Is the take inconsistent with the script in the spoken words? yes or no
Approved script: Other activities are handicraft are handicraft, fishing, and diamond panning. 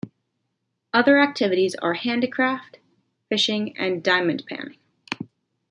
yes